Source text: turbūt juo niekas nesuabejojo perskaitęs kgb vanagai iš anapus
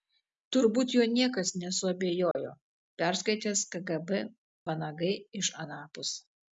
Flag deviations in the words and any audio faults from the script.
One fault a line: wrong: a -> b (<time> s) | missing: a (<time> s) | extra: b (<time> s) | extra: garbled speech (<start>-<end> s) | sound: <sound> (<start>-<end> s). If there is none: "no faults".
sound: dropout (2.3-2.4 s)